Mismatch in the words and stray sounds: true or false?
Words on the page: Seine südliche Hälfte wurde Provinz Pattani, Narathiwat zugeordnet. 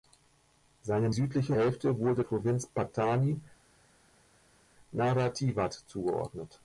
false